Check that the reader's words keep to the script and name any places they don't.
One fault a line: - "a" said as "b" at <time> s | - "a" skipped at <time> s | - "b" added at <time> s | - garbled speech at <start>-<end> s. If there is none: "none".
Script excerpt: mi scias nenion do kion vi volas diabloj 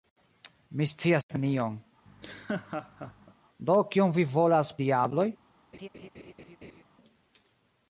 none